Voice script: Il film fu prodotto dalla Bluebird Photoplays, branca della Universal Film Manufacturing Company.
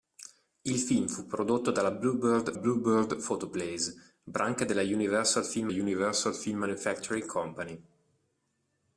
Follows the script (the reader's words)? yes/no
no